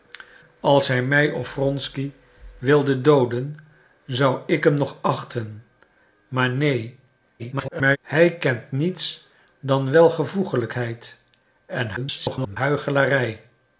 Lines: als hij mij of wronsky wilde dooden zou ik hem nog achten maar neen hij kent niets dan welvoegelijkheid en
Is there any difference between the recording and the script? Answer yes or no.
yes